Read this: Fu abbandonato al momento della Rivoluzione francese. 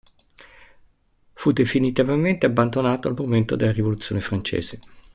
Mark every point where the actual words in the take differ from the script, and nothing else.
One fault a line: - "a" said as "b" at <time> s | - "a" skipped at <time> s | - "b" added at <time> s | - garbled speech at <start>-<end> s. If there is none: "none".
- "definitivamente" added at 1.5 s